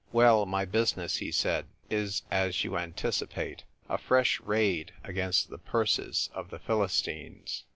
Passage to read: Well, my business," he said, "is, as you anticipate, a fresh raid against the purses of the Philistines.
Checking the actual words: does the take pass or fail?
pass